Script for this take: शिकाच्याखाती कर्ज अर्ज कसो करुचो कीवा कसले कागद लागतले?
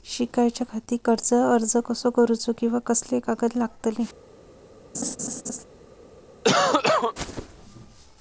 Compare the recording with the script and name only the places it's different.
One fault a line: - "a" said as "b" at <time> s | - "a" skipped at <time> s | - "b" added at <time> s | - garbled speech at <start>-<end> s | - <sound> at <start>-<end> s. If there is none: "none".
- laugh at 4.9-5.6 s
- cough at 6.4-7.1 s